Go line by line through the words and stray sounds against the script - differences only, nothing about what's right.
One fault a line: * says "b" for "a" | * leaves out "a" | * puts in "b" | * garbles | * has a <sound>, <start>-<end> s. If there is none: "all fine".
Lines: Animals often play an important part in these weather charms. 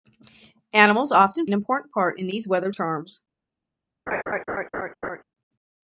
* leaves out "play"
* has a laugh, 4.1-5.2 s